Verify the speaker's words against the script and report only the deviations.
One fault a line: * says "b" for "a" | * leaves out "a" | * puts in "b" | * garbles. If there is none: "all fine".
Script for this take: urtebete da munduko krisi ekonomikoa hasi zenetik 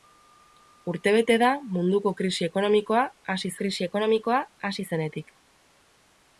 * puts in "krisi ekonomikoa hasi"